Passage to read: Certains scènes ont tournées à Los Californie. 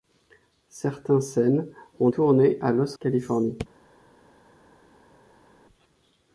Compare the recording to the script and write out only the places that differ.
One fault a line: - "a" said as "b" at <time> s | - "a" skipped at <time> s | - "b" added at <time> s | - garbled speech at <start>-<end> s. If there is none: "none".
none